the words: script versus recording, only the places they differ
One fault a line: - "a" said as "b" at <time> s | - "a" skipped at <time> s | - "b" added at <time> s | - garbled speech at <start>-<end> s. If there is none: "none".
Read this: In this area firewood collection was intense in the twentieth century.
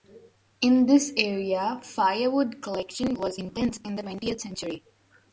none